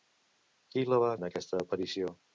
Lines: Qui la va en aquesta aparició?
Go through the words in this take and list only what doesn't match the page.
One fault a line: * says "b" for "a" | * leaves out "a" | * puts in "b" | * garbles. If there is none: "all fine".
all fine